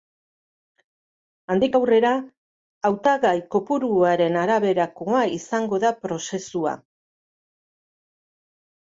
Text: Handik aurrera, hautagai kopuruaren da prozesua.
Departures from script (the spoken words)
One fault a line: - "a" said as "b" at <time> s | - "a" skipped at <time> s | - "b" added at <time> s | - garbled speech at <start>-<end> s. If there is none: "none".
- "araberakoa izango" added at 4.4 s